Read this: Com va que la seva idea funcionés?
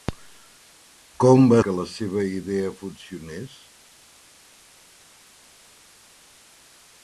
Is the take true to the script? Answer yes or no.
yes